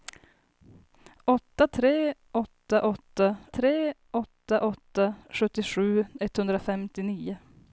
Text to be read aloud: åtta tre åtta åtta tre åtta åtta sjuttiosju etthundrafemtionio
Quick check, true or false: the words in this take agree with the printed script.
true